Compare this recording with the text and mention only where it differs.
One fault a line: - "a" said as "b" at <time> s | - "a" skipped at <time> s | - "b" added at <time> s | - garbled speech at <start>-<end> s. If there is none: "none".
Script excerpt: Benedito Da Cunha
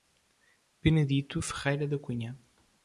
- "Ferreira" added at 1.4 s